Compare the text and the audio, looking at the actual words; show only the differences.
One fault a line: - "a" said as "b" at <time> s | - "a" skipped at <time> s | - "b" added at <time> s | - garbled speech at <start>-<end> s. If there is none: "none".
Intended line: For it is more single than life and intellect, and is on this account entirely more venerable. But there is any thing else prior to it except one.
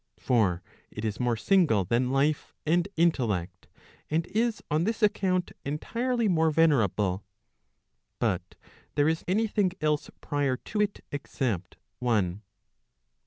none